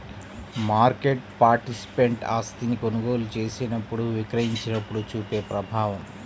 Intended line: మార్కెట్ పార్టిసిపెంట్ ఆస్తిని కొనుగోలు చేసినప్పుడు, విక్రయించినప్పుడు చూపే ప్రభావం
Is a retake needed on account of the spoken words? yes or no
no